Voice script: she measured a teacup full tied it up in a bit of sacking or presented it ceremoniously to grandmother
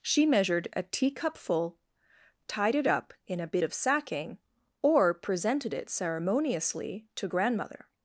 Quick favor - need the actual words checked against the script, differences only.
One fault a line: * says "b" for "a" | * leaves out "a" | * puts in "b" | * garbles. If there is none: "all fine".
all fine